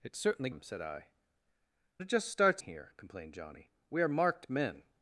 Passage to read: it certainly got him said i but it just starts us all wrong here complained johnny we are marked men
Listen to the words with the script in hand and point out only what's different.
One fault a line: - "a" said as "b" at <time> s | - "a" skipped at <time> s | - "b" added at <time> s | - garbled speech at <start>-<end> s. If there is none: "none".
- "got" skipped at 0.5 s
- "but" skipped at 1.1 s
- "us all wrong" skipped at 2.6 s